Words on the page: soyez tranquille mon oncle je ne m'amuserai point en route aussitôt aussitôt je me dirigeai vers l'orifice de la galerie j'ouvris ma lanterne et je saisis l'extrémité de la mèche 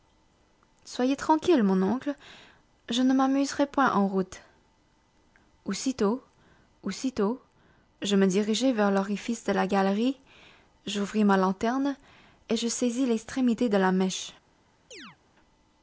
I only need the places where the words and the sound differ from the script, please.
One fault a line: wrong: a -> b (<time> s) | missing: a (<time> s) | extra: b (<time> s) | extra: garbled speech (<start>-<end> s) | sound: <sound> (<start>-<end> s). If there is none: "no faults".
sound: chirp (14.9-15.2 s)